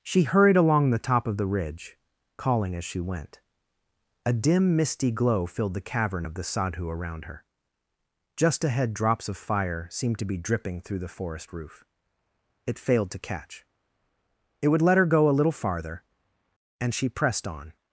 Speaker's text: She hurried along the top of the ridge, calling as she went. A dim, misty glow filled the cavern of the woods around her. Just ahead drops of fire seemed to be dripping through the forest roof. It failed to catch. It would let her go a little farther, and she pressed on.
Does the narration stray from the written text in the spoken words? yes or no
yes